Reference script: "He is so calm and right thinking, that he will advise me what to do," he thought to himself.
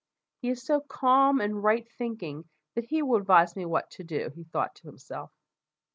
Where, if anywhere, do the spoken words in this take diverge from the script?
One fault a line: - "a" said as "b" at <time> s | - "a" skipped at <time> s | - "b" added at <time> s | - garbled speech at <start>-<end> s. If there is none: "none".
none